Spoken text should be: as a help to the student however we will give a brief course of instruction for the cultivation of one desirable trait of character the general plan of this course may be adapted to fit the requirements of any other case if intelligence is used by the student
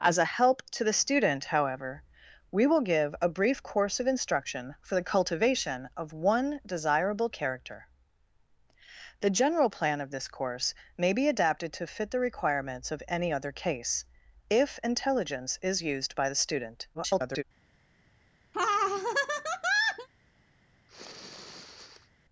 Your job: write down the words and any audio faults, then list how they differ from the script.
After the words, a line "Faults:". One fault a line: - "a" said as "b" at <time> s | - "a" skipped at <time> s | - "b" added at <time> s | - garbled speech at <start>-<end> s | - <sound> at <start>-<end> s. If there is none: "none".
as a help to the student however we will give a brief course of instruction for the cultivation of one desirable character the general plan of this course may be adapted to fit the requirements of any other case if intelligence is used by the student [garbled]
Faults:
- "trait of" skipped at 7.3 s
- garbled speech at 16.9-17.4 s
- laugh at 18.5-20.1 s
- sniff at 20.9-22.1 s